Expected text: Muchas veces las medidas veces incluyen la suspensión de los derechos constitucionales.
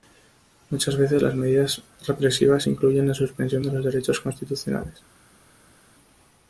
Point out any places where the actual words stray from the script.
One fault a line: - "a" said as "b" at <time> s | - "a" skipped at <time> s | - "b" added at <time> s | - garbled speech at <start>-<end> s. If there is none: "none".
- "veces" said as "represivas" at 2.1 s